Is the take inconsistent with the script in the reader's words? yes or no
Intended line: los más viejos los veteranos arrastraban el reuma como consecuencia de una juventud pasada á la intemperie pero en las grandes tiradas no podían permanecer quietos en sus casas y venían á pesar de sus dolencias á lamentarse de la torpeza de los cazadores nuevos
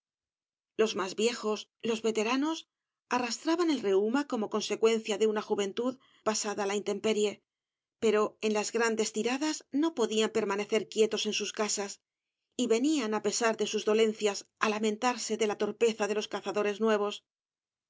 no